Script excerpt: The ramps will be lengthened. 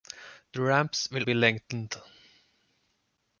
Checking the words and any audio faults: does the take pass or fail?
pass